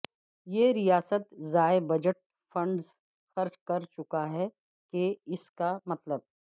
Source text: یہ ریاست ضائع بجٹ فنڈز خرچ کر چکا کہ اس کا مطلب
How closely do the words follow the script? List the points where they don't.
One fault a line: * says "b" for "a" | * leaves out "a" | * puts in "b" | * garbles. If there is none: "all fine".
* puts in "ہے"